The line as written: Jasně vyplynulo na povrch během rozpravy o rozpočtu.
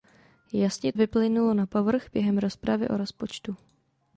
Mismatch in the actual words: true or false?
false